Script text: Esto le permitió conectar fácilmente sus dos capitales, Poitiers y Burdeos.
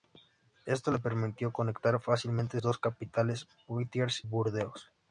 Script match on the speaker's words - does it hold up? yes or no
no